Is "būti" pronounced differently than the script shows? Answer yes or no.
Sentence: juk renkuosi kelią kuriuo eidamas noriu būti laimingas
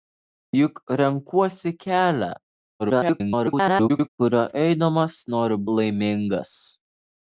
yes